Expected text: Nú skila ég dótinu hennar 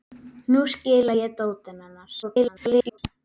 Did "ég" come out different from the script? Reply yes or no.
no